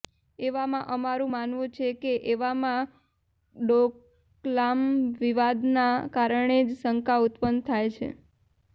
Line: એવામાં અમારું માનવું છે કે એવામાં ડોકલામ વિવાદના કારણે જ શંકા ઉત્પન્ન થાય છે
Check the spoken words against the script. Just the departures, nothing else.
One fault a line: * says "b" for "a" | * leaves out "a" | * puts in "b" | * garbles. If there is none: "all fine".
all fine